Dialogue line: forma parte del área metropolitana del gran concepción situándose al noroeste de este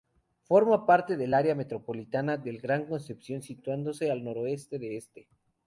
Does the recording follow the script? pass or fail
pass